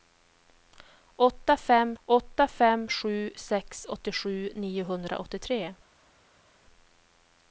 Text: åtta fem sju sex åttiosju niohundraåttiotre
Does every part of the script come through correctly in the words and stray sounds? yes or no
no